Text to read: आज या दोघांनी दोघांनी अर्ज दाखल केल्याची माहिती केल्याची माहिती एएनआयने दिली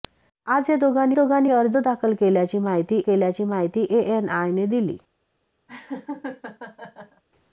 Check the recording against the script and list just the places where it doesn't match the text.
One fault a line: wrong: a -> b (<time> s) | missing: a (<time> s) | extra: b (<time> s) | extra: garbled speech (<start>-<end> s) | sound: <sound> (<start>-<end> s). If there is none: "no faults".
sound: laugh (5.7-7.2 s)